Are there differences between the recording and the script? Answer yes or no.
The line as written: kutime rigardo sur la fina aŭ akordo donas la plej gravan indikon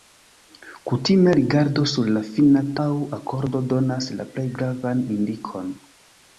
no